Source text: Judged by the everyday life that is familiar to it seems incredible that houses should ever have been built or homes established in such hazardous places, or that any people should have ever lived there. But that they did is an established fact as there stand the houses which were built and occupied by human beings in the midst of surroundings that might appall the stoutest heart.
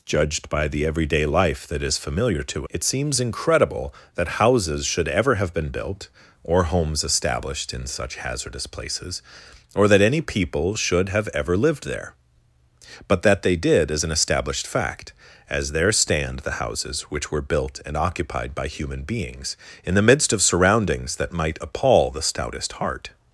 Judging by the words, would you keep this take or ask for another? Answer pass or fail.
pass